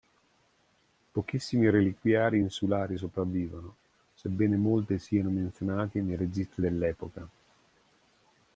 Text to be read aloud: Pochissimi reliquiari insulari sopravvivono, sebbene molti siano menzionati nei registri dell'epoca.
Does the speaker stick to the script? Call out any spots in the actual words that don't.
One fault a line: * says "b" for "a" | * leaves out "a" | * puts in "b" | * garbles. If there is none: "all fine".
all fine